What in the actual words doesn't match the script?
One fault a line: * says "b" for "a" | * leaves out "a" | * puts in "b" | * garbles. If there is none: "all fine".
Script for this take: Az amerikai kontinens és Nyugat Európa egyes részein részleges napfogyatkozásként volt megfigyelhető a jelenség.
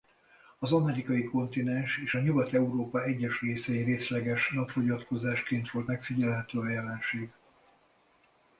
all fine